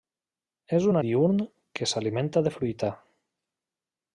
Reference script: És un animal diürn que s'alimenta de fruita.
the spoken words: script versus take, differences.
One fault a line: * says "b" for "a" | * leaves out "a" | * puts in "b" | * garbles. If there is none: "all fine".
* leaves out "animal"